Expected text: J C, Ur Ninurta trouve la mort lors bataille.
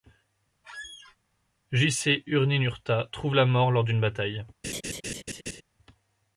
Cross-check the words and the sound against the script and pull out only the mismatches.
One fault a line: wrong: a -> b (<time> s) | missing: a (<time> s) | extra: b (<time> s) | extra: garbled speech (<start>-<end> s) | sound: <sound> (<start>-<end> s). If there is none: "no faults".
sound: squeak (0.6-1.2 s)
extra: d'une (3.8 s)
sound: laugh (4.6-5.6 s)